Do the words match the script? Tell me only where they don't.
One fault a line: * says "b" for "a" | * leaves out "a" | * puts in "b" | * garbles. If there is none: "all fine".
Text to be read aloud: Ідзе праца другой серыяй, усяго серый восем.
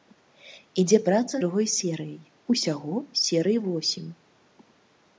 all fine